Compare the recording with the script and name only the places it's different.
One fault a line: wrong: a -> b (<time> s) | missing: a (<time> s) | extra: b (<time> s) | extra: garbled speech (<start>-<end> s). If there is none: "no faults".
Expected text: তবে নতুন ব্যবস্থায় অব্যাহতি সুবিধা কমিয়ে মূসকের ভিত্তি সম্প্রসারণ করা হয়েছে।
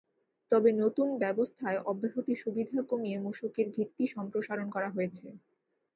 no faults